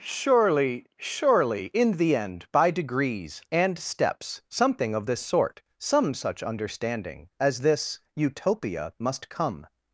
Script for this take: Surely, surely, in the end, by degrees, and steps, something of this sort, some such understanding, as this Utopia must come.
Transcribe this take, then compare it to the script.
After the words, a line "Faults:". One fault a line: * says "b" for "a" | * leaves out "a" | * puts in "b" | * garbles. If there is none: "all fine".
Surely, surely, in the end, by degrees, and steps, something of this sort, some such understanding, as this Utopia must come.
Faults:
all fine